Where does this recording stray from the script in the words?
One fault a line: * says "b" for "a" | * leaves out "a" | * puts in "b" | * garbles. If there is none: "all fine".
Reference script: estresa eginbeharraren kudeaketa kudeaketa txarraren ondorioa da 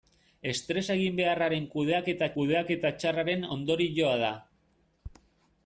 all fine